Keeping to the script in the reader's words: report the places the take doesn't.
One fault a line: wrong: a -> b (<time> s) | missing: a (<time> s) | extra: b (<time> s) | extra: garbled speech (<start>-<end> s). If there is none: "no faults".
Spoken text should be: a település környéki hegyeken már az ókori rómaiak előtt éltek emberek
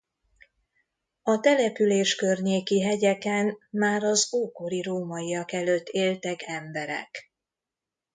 no faults